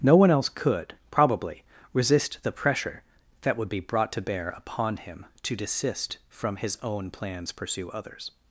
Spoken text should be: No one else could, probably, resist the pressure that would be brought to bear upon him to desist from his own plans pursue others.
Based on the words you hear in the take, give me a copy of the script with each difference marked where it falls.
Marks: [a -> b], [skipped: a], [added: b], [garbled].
No one else could, probably, resist the pressure that would be brought to bear upon him to desist from his own plans pursue others.